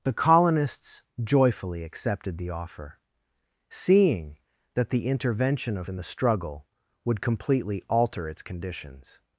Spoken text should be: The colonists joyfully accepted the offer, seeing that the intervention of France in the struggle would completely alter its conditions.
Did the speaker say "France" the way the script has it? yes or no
no